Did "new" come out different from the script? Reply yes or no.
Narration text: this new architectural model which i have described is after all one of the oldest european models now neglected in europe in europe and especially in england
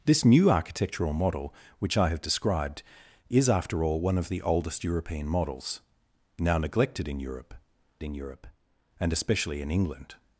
no